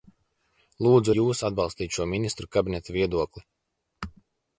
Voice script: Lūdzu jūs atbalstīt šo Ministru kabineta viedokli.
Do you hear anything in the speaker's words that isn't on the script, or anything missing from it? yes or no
no